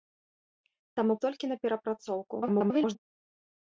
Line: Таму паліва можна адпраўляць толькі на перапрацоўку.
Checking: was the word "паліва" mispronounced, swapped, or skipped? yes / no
yes